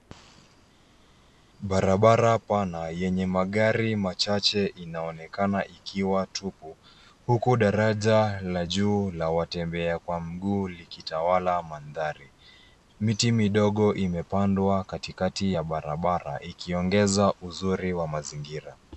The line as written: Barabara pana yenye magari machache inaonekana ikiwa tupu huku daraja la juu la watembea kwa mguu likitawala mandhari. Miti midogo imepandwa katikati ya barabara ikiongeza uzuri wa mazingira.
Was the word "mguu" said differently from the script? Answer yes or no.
no